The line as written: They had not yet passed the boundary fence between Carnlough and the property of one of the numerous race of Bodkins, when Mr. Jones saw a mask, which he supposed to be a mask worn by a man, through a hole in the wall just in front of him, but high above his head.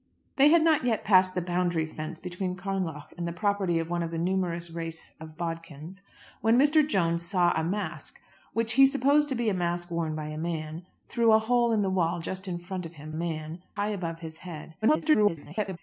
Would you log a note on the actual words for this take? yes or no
yes